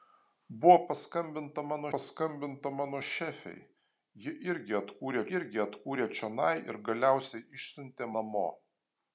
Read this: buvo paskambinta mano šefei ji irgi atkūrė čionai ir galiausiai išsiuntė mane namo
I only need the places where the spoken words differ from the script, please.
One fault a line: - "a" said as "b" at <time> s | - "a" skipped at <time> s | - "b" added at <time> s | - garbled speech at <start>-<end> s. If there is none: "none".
- "paskambinta mano" added at 1.9 s
- "irgi atkūrė" added at 5.4 s
- "mane" skipped at 8.1 s